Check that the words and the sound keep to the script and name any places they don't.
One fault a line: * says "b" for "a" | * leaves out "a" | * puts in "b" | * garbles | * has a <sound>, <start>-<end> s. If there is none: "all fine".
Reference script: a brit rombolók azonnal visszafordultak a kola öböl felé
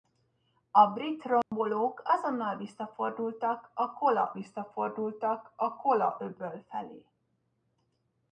* has a dropout, 1.4-1.5 s
* puts in "visszafordultak a kola"